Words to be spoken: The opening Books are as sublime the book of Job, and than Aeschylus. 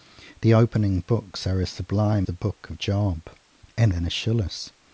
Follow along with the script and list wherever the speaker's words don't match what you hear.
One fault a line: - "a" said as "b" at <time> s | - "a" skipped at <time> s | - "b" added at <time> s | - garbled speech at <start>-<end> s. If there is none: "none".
none